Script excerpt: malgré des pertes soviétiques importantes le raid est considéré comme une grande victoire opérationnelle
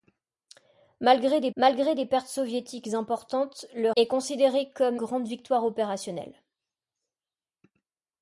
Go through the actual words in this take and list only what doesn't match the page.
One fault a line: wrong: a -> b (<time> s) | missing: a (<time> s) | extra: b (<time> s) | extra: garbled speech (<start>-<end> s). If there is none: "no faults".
extra: malgré des (1.5 s)
missing: raid (3.9 s)
missing: une (5.0 s)